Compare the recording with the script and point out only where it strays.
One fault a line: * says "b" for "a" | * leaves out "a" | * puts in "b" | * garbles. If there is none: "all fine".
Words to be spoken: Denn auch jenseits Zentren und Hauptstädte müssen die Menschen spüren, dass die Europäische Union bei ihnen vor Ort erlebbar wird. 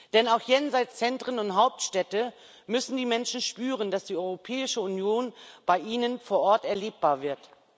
all fine